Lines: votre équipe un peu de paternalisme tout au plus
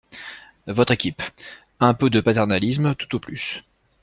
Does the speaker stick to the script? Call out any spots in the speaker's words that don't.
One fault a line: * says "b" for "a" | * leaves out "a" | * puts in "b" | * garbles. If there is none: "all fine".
all fine